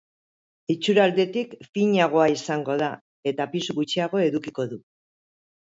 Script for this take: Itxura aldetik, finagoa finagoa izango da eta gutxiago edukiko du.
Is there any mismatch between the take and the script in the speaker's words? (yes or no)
yes